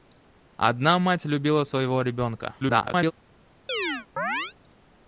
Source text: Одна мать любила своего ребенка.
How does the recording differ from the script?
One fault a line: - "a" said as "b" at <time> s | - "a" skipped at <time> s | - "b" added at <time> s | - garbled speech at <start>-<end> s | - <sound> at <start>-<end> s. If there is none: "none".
- garbled speech at 2.6-3.1 s
- chirp at 3.7-4.5 s